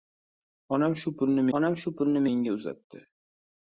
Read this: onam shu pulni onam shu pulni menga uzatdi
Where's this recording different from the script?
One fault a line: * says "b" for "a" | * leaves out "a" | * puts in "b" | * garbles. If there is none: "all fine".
all fine